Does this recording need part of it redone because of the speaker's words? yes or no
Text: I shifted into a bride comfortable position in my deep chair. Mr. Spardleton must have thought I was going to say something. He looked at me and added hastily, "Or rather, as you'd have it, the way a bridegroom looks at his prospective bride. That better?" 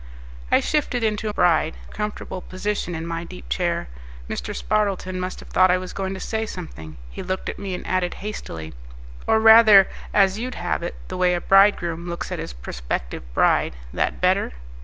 no